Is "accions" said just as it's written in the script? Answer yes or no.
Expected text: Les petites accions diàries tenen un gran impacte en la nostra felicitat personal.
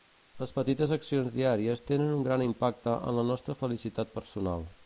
yes